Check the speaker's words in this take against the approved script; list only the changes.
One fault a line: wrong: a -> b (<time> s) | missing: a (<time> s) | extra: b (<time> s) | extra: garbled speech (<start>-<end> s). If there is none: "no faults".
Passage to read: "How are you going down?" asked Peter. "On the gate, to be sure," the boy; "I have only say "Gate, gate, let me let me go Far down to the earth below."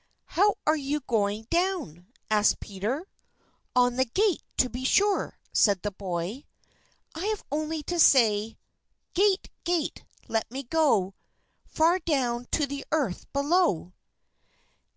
extra: said (5.5 s)
extra: to (7.8 s)
missing: let me (10.6 s)